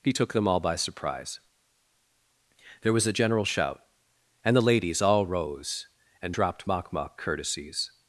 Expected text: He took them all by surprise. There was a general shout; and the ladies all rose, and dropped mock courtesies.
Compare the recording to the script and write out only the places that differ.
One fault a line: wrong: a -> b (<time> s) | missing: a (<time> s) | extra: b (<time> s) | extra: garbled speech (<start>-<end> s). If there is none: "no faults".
extra: mock (6.9 s)